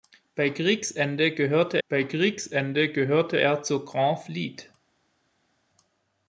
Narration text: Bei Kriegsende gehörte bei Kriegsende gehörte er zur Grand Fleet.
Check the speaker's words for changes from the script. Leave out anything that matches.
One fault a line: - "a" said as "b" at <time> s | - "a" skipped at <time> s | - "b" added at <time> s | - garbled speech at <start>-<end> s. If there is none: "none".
none